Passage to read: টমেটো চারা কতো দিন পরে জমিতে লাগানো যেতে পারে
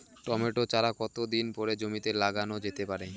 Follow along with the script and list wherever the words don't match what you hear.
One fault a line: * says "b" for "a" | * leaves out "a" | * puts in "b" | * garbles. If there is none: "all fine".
all fine